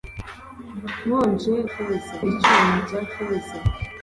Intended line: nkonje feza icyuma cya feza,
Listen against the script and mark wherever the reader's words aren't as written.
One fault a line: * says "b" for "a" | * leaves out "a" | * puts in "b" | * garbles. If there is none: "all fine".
all fine